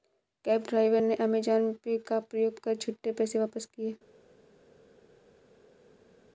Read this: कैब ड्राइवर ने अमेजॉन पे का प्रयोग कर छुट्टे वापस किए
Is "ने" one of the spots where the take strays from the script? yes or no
no